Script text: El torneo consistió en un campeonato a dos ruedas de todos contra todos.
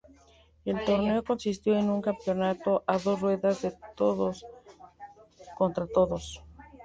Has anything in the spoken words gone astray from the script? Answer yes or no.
no